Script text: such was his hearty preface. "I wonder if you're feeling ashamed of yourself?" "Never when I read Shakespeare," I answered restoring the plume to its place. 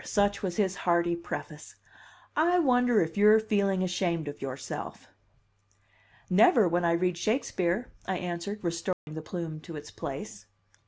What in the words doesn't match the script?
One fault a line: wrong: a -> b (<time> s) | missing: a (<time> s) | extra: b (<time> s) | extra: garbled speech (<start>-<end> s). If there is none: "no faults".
no faults